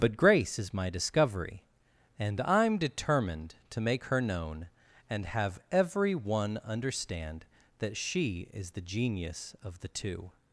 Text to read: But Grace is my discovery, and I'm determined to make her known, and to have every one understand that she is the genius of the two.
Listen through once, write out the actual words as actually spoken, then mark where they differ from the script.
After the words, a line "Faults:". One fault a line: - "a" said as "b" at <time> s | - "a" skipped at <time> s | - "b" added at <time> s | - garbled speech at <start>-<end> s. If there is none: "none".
But Grace is my discovery, and I'm determined to make her known, and have every one understand that she is the genius of the two.
Faults:
- "to" skipped at 5.3 s